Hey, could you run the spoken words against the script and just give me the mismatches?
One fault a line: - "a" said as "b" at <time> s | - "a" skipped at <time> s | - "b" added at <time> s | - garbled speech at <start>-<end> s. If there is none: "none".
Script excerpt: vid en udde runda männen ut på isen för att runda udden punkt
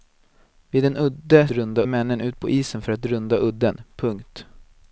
none